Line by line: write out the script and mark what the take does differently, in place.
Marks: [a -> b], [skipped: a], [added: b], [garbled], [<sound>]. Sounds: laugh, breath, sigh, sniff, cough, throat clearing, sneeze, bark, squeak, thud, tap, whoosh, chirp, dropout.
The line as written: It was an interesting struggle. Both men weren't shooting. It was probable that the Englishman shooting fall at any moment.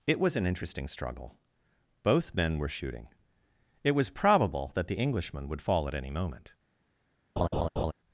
It was an interesting struggle. Both men [weren't -> were] shooting. It was probable that the Englishman [shooting -> would] fall at any moment. [laugh]